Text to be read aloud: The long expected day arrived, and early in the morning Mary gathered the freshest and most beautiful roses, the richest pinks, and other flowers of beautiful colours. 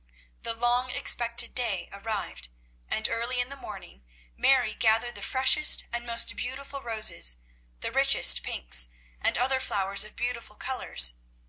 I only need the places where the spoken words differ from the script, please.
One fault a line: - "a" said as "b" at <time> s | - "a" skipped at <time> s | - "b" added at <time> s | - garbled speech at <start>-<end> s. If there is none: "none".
none